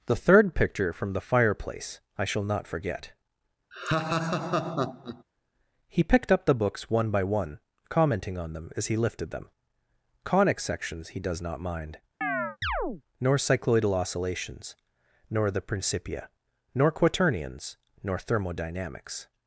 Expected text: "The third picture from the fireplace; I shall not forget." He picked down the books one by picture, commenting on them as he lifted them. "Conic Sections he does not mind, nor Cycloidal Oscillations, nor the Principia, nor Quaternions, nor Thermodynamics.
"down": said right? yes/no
no